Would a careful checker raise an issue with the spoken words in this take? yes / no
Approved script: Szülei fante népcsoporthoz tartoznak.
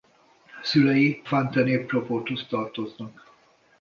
no